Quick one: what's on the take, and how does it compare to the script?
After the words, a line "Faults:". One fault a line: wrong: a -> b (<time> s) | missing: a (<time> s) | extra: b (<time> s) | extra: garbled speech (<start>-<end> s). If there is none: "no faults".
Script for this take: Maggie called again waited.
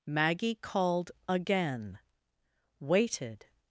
Maggie called again waited.
Faults:
no faults